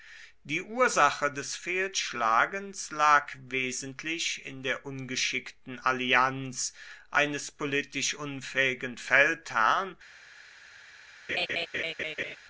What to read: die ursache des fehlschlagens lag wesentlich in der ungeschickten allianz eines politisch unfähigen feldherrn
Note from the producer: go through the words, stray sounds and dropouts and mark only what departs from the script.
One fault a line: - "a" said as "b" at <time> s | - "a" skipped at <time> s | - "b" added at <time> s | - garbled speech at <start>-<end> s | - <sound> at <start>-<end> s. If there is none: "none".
- laugh at 11.3-12.4 s